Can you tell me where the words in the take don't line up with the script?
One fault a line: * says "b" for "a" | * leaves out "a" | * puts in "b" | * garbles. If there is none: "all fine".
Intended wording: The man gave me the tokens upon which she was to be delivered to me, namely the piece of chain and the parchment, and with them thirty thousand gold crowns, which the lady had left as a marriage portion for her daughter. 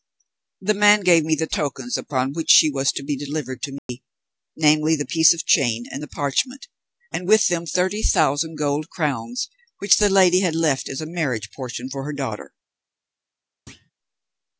all fine